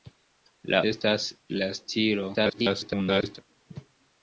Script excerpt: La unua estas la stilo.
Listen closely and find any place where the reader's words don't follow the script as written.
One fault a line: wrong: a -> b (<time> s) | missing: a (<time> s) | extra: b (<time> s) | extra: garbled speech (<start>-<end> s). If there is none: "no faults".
missing: unua (0.8 s)
extra: garbled speech (2.3-3.4 s)